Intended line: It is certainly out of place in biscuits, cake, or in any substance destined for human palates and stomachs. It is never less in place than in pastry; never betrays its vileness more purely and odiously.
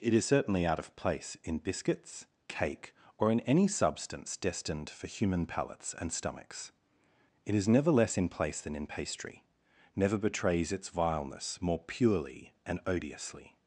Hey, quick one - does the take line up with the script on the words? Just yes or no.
yes